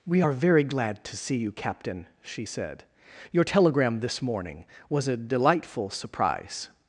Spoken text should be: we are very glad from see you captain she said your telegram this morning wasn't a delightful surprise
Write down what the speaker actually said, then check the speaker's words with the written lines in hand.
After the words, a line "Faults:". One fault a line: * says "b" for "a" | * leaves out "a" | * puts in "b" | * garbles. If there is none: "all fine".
we are very glad to see you captain she said your telegram this morning was a delightful surprise
Faults:
* says "to" for "from"
* says "was" for "wasn't"